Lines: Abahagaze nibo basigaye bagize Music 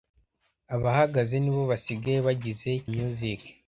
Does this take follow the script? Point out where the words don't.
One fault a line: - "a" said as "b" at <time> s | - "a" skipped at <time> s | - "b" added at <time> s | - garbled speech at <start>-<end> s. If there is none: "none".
none